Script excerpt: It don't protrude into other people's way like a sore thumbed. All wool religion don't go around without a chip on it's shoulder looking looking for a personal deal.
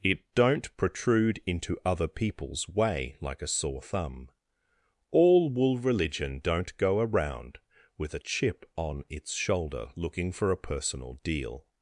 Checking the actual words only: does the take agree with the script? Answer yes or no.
no